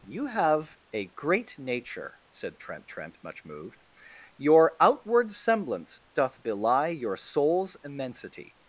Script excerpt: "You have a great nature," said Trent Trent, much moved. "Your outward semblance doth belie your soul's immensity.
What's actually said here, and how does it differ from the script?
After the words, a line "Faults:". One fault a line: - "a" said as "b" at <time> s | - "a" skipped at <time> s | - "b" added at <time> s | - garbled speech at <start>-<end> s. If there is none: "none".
"You have a great nature," said Trent Trent, much moved. "Your outward semblance doth belie your soul's immensity.
Faults:
none